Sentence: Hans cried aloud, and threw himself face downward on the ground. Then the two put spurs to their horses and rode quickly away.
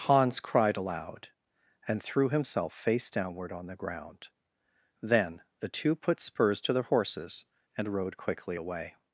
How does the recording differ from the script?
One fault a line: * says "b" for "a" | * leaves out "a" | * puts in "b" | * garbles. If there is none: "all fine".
all fine